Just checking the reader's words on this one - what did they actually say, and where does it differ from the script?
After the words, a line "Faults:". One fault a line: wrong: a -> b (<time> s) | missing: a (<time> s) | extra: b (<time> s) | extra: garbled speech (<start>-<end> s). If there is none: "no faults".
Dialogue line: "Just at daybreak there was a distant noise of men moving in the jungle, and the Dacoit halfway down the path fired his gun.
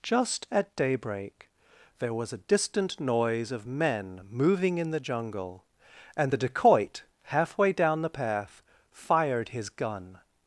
"Just at daybreak there was a distant noise of men moving in the jungle, and the Dacoit halfway down the path fired his gun.
Faults:
no faults